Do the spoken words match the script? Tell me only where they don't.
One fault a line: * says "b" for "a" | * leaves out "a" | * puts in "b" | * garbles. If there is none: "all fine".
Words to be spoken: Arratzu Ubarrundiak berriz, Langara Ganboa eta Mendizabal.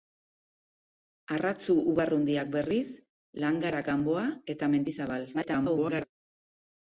* garbles